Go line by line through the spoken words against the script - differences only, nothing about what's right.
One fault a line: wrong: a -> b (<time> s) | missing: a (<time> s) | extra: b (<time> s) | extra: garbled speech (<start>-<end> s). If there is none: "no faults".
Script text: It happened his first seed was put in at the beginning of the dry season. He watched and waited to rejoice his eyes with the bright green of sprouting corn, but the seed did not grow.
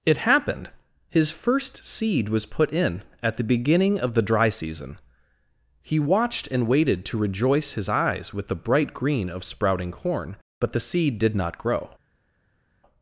no faults